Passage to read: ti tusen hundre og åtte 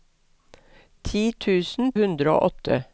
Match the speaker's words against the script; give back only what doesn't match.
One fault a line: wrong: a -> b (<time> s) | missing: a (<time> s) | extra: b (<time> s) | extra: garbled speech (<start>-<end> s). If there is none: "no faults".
no faults